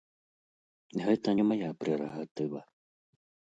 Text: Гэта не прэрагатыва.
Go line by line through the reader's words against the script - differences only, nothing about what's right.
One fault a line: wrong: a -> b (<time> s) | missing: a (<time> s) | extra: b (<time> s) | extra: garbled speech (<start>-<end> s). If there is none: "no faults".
extra: мая (1.5 s)